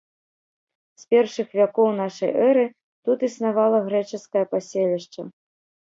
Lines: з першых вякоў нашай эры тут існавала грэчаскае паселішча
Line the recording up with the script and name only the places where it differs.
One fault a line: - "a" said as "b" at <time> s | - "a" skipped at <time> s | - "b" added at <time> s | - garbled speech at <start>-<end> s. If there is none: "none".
none